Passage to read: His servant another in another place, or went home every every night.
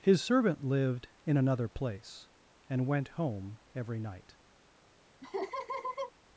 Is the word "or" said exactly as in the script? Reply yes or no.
no